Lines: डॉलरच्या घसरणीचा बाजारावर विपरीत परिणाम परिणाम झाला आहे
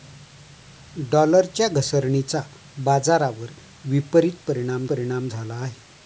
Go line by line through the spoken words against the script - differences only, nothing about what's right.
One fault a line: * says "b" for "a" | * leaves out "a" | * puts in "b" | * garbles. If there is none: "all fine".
all fine